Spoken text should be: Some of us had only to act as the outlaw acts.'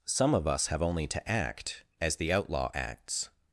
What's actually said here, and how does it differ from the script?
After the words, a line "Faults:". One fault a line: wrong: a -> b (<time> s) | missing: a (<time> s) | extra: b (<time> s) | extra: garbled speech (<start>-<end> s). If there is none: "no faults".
Some of us have only to act as the outlaw acts.'
Faults:
wrong: had -> have (0.7 s)